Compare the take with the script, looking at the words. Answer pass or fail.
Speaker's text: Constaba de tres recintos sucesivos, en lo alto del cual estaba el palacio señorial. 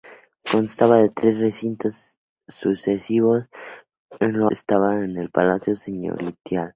fail